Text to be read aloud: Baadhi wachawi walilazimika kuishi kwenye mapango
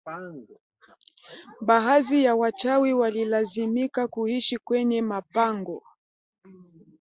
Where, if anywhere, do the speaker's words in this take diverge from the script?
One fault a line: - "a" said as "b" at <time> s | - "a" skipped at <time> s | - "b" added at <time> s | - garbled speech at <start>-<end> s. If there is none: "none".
- "ya" added at 2.2 s